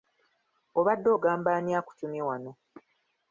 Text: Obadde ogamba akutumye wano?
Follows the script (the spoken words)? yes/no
no